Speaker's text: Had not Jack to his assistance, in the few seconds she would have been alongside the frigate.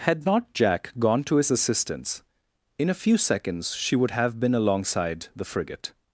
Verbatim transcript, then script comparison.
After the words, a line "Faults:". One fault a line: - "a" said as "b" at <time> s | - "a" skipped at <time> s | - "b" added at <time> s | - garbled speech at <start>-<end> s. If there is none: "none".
Had not Jack gone to his assistance, in a few seconds she would have been alongside the frigate.
Faults:
- "gone" added at 1.0 s
- "the" said as "a" at 2.9 s